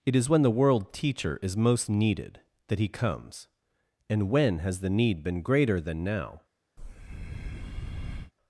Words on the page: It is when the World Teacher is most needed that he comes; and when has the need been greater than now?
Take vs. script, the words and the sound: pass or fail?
fail